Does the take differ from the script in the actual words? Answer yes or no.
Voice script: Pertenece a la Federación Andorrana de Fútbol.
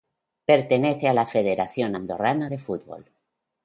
no